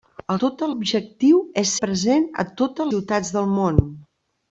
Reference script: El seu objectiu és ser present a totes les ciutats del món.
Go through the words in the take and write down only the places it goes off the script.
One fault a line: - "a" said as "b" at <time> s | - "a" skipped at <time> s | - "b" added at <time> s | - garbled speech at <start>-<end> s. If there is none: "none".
- "seu" said as "totes" at 0.5 s
- "ser" skipped at 1.7 s
- "les" skipped at 2.9 s